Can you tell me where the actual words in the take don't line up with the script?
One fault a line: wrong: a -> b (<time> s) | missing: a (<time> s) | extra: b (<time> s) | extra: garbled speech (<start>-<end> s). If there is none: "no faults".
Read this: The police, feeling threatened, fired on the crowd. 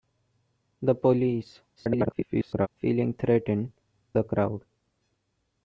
extra: garbled speech (1.8-2.7 s)
missing: fired on (3.7 s)